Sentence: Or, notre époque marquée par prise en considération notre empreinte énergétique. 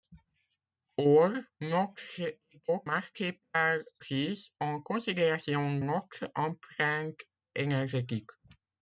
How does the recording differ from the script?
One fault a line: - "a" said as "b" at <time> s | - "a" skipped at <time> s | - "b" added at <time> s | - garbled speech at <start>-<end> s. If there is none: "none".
none